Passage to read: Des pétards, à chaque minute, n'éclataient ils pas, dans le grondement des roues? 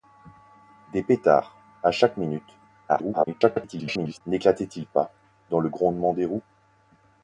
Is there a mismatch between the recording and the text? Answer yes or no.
yes